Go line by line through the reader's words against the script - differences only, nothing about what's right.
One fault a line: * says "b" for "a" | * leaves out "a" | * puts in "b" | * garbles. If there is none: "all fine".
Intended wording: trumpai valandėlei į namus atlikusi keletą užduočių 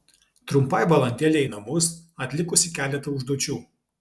all fine